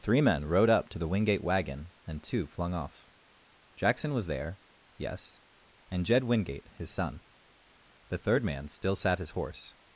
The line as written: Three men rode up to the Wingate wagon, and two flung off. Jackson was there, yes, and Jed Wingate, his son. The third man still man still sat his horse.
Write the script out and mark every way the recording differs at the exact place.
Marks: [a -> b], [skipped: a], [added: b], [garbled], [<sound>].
Three men rode up to the Wingate wagon, and two flung off. Jackson was there, yes, and Jed Wingate, his son. The third man still [skipped: man still] sat his horse.